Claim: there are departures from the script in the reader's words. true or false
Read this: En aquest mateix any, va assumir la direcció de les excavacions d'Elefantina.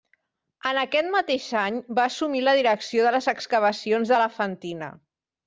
false